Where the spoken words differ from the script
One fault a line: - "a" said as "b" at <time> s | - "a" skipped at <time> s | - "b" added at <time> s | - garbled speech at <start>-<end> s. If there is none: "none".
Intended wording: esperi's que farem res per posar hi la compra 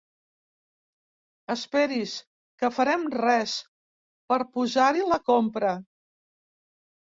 none